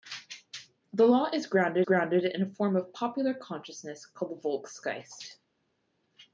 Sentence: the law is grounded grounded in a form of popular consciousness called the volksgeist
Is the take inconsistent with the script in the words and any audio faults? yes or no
no